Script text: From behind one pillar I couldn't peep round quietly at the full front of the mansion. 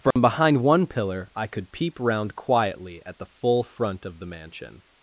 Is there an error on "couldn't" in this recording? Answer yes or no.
yes